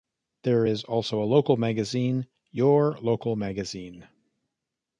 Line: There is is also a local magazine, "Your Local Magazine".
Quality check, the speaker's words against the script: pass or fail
fail